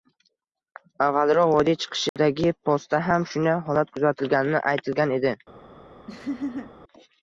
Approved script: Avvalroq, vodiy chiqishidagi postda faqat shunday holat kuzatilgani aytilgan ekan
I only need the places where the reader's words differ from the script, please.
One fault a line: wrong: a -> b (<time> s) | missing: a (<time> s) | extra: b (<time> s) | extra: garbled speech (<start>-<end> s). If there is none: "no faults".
wrong: faqat -> ham (3.1 s)
wrong: ekan -> edi (5.2 s)